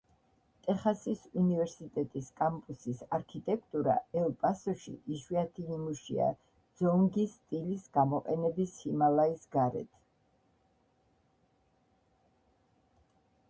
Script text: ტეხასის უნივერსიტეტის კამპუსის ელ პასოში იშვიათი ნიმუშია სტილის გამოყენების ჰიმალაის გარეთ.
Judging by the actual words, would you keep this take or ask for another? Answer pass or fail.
fail